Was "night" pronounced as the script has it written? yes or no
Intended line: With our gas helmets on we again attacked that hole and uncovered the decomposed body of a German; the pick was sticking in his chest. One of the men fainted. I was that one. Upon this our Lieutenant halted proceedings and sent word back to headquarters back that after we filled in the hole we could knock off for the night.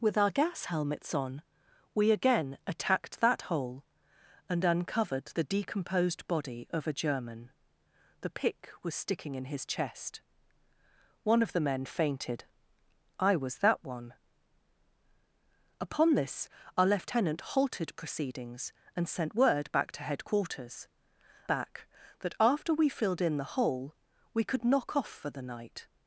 yes